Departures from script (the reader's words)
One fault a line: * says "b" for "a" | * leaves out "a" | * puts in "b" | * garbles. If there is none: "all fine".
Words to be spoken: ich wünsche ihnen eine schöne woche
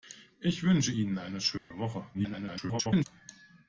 * garbles